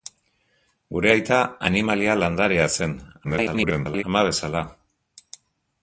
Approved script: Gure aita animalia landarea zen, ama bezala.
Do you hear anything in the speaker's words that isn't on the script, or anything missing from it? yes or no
yes